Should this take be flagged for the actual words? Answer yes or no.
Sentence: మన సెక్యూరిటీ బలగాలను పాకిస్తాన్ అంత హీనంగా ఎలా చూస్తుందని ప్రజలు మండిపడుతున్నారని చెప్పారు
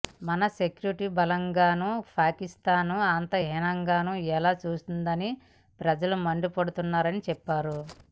no